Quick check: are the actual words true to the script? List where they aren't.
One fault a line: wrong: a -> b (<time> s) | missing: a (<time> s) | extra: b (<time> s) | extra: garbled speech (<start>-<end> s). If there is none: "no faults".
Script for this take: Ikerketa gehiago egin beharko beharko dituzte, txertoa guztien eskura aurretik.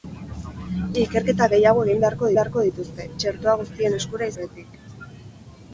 no faults